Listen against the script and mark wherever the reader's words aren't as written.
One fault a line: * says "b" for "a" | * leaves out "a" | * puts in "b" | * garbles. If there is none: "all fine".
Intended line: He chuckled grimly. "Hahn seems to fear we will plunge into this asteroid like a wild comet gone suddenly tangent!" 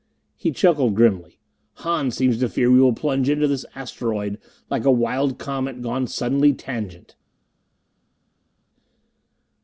all fine